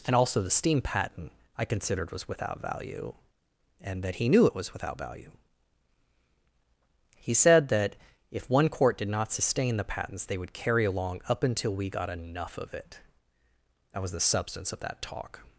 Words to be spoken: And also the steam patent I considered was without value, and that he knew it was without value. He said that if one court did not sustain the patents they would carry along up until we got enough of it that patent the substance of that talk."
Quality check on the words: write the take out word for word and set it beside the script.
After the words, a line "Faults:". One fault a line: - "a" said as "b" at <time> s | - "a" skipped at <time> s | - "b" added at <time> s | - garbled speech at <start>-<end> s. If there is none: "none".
And also the steam patent I considered was without value, and that he knew it was without value. He said that if one court did not sustain the patents they would carry along up until we got enough of it that was the substance of that talk."
Faults:
- "patent" said as "was" at 14.0 s